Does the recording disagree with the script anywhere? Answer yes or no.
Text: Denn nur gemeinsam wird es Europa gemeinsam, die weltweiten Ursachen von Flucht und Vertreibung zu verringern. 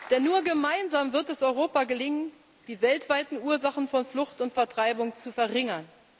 yes